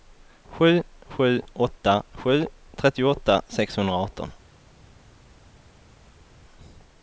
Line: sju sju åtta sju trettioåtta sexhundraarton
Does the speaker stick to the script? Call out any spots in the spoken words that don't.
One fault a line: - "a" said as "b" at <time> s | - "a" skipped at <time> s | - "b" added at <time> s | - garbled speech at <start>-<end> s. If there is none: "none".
none